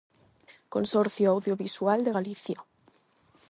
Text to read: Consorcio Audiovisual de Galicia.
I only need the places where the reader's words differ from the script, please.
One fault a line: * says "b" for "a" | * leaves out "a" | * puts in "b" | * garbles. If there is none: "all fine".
all fine